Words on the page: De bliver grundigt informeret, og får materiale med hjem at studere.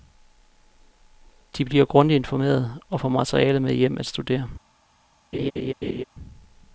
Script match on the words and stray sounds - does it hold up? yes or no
no